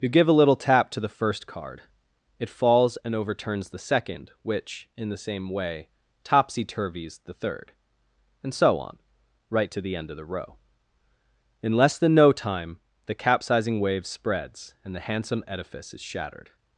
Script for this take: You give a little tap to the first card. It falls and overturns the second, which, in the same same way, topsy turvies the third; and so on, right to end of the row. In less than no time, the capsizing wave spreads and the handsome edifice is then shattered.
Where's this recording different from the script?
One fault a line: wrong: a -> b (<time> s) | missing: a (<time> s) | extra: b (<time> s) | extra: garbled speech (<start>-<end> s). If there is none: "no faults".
missing: same (5.5 s)
extra: the (9.8 s)
missing: then (16.0 s)